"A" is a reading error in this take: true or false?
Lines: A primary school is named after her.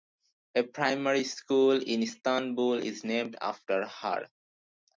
false